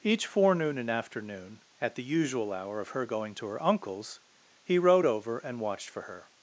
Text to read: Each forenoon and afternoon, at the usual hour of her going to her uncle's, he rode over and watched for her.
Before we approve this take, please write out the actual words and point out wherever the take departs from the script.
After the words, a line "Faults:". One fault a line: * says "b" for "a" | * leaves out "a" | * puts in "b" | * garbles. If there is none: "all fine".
Each forenoon and afternoon, at the usual hour of her going to her uncle's, he rode over and watched for her.
Faults:
all fine